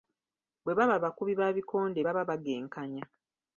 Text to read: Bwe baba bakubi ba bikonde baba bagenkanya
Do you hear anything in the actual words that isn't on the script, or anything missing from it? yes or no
no